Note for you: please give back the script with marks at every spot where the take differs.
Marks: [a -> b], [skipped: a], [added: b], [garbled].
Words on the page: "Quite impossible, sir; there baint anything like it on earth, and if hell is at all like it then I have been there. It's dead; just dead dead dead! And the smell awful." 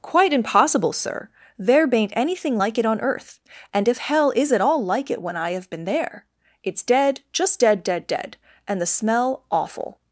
"Quite impossible, sir; there baint anything like it on earth, and if hell is at all like it [then -> when] I have been there. It's dead; just dead dead dead! And the smell awful."